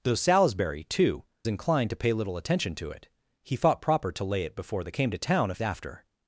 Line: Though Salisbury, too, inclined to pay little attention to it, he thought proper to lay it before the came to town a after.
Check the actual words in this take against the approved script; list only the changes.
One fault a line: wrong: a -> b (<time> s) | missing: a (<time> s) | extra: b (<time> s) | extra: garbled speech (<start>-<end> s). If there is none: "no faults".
no faults